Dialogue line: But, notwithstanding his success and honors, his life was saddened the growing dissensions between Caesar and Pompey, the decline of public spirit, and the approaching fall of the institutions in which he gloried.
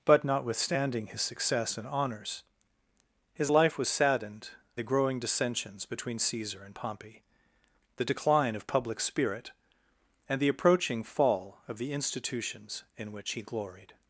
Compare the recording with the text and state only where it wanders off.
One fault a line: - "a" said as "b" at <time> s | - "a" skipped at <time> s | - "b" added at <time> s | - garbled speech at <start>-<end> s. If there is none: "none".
none